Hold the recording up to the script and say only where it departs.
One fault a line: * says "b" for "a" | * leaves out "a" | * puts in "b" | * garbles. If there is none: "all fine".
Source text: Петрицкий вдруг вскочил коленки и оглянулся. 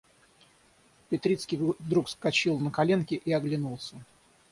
* puts in "на"